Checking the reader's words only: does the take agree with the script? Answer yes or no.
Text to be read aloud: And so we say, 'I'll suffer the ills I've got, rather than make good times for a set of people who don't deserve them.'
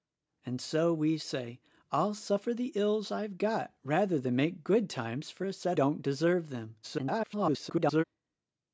no